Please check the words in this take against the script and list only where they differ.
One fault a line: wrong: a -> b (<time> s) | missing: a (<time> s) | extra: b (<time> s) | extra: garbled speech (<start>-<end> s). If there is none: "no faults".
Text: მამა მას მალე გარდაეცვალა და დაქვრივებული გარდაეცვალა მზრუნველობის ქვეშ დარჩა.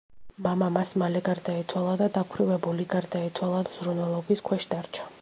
no faults